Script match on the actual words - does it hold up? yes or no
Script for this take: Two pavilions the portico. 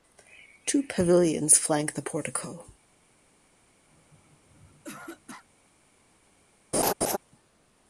no